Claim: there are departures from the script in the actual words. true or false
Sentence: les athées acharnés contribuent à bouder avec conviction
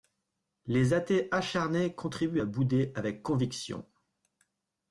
false